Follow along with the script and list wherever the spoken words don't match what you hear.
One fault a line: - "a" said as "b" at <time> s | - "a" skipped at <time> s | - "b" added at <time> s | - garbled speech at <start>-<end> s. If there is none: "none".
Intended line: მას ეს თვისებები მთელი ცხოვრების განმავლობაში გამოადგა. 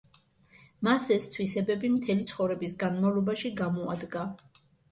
none